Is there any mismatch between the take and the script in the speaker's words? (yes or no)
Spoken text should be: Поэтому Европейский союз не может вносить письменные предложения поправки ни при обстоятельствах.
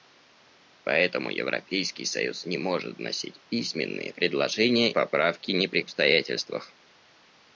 no